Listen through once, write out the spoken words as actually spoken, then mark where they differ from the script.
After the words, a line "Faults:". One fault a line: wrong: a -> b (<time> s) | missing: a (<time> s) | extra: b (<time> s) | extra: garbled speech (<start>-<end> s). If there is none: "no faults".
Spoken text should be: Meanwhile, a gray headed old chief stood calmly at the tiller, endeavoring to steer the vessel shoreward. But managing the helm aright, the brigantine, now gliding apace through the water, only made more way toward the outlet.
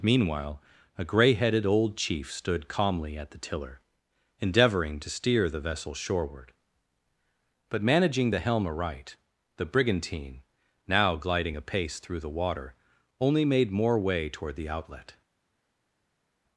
Meanwhile, a gray headed old chief stood calmly at the tiller, endeavoring to steer the vessel shoreward. But managing the helm aright, the brigantine, now gliding apace through the water, only made more way toward the outlet.
Faults:
no faults